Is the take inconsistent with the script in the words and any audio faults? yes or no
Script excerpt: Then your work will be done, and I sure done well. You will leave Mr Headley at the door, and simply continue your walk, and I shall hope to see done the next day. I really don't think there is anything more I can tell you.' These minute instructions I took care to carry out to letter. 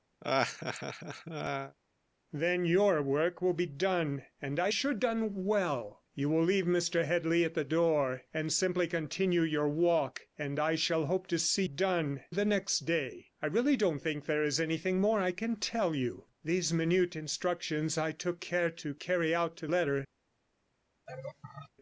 yes